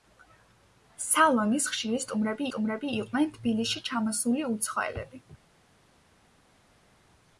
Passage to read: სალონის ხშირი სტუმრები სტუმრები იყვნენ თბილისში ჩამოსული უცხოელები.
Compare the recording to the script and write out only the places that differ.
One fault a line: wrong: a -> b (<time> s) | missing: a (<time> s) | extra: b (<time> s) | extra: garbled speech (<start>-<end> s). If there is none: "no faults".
no faults